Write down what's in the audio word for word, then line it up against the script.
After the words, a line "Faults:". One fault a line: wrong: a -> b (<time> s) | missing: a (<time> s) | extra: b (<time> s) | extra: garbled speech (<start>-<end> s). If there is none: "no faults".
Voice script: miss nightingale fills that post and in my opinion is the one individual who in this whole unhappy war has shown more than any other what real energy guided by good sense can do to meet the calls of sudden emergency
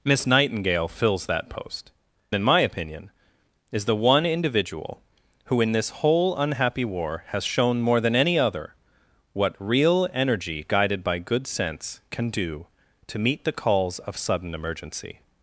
miss nightingale fills that post in my opinion is the one individual who in this whole unhappy war has shown more than any other what real energy guided by good sense can do to meet the calls of sudden emergency
Faults:
missing: and (1.9 s)